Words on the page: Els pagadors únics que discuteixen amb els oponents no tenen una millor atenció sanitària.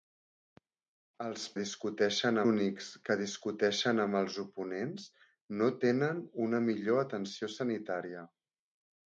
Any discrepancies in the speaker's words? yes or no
yes